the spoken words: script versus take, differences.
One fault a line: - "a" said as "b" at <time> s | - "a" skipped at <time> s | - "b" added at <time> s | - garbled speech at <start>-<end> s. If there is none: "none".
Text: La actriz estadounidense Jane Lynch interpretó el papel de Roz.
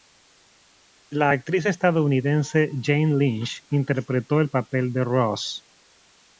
none